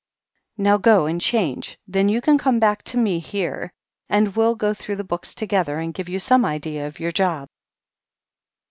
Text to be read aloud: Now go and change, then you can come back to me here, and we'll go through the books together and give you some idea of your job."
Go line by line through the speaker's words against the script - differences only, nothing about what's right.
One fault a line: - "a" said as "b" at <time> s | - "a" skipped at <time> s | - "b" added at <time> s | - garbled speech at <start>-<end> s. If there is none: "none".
none